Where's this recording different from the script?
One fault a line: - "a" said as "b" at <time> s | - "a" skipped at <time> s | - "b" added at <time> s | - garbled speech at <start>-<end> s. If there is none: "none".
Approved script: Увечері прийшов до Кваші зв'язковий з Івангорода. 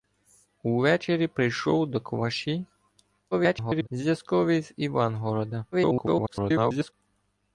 - garbled speech at 3.3-3.9 s
- garbled speech at 5.7-6.9 s